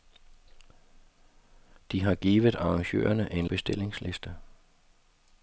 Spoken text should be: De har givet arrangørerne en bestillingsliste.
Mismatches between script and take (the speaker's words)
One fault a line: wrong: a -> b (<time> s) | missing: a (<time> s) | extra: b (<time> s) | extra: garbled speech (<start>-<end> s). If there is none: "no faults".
no faults